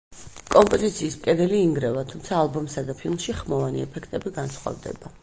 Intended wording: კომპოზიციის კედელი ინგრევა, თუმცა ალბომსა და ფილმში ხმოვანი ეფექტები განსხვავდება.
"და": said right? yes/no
yes